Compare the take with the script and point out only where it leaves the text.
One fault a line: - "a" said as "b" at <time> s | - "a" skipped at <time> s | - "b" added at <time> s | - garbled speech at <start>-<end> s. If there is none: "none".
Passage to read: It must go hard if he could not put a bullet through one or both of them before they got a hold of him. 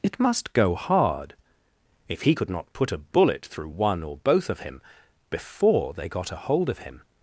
- "them" said as "him" at 4.6 s